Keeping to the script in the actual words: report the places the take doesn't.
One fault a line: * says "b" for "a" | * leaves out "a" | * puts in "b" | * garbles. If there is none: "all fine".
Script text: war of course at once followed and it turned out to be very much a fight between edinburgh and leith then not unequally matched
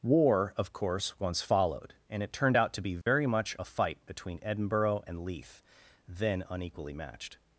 * leaves out "at"
* leaves out "not"